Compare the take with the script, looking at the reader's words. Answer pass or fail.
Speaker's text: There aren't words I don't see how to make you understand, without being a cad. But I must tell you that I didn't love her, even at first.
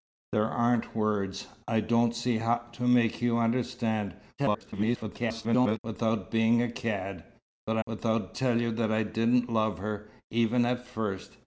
fail